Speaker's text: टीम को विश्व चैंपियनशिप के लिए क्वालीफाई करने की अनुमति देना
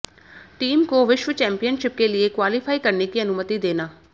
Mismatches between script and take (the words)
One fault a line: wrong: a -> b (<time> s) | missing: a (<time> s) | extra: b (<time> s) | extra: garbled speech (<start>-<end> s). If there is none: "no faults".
no faults